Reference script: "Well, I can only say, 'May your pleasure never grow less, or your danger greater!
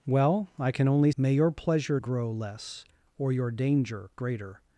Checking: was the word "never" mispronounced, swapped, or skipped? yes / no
yes